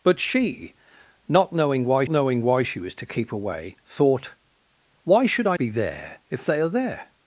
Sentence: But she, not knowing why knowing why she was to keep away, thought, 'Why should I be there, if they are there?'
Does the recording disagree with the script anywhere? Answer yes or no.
no